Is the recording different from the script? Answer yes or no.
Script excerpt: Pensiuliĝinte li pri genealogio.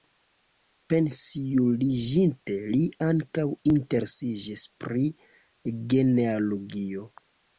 yes